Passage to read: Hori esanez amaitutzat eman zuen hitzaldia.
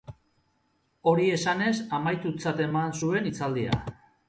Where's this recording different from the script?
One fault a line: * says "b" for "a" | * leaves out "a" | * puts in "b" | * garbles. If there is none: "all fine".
all fine